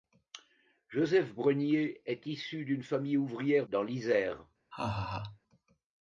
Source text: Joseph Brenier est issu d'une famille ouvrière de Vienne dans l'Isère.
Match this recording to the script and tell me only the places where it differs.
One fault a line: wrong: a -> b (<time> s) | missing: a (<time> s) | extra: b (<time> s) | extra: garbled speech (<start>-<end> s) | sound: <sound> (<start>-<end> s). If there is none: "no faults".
missing: de Vienne (3.7 s)
sound: laugh (4.7-5.4 s)